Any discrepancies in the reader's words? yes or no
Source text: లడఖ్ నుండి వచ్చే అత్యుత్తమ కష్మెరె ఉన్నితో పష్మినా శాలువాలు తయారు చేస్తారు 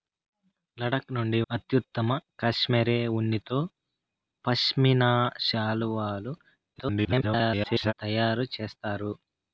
yes